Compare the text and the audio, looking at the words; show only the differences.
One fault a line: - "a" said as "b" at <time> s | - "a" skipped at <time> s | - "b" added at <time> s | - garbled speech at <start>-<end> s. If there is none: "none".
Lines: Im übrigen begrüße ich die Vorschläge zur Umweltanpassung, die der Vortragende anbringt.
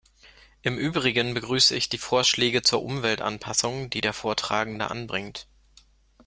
none